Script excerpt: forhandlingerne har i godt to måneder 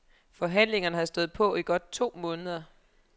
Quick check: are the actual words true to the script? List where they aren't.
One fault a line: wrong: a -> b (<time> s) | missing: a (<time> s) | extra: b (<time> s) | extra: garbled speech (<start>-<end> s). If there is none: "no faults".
extra: stået på (1.1 s)